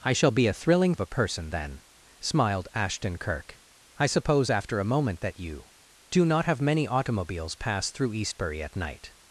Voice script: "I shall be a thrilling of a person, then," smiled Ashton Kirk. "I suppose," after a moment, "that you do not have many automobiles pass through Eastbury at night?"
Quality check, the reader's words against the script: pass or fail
pass